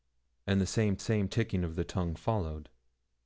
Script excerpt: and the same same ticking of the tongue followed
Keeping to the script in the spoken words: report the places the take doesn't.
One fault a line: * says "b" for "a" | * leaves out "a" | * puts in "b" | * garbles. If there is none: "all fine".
all fine